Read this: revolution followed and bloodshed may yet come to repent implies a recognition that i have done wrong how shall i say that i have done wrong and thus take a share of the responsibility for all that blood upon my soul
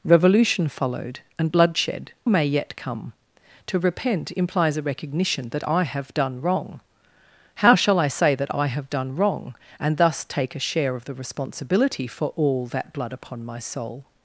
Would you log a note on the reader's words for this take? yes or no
no